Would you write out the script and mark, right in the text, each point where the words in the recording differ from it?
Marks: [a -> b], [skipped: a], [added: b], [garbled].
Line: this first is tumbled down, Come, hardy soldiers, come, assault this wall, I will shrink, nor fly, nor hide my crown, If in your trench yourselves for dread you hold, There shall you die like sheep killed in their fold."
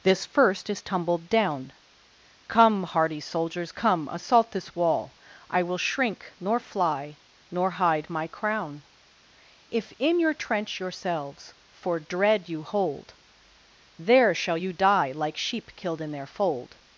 this first is tumbled down, Come, hardy soldiers, come, assault this wall, I will shrink, nor fly, nor hide my crown, If in your trench yourselves for dread you hold, There shall you die like sheep killed in their fold."